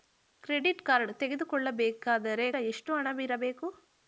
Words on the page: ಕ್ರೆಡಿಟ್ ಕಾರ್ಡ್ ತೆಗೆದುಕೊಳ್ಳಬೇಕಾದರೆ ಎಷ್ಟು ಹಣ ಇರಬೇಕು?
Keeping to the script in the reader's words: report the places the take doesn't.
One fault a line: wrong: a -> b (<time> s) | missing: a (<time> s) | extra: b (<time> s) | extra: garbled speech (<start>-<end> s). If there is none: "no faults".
no faults